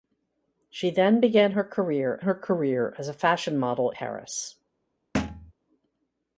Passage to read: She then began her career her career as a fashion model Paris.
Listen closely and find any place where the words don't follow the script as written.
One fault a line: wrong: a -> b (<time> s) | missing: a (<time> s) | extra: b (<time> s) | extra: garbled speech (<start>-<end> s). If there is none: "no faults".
no faults